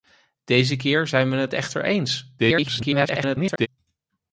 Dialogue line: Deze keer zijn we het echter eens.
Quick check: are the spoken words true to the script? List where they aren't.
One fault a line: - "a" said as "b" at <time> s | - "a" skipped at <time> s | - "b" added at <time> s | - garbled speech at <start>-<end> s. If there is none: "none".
- garbled speech at 2.4-3.7 s